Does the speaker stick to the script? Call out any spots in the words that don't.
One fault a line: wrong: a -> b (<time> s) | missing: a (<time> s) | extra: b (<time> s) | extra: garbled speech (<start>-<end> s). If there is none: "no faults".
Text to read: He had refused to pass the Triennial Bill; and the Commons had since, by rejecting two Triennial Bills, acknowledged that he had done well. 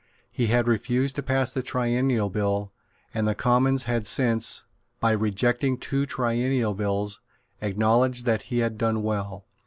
no faults